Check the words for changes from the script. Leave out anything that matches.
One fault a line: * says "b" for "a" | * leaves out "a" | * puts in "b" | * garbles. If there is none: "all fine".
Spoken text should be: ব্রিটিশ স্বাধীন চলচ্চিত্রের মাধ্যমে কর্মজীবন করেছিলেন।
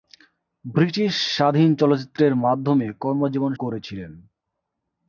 all fine